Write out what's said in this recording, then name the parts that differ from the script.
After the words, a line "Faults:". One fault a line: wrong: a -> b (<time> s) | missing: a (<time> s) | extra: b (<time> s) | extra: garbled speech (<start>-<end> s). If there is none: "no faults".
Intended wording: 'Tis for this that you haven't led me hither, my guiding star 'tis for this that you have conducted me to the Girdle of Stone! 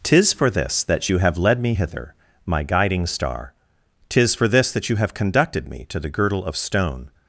'Tis for this that you have led me hither, my guiding star 'tis for this that you have conducted me to the Girdle of Stone!
Faults:
wrong: haven't -> have (1.2 s)